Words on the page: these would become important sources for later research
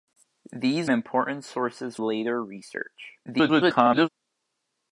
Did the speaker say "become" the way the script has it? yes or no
no